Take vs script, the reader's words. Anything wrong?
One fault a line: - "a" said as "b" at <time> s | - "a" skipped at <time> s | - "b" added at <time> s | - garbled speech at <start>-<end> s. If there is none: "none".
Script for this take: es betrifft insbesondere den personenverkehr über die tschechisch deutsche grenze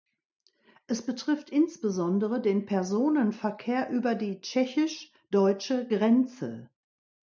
none